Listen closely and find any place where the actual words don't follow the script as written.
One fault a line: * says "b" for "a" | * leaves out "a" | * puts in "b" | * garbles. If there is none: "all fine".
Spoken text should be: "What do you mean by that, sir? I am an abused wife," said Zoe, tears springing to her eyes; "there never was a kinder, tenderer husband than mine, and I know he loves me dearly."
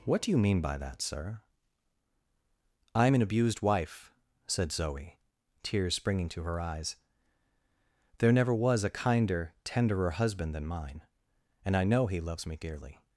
all fine